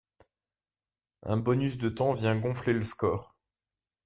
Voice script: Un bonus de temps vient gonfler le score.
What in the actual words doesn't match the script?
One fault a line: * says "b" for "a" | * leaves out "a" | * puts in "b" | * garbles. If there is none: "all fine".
all fine